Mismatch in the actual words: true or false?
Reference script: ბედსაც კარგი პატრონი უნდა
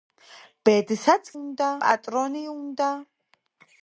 true